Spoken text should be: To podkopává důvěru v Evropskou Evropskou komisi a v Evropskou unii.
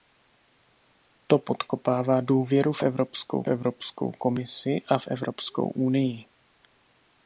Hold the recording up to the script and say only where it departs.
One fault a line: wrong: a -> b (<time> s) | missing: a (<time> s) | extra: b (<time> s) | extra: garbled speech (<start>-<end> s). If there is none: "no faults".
no faults